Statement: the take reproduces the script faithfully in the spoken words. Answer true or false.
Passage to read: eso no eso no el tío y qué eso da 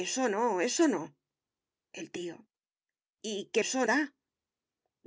true